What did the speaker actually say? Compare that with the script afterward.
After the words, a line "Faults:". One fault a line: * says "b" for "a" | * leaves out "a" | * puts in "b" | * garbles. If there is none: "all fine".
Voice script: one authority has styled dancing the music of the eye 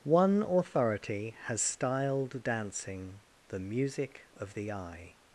one authority has styled dancing the music of the eye
Faults:
all fine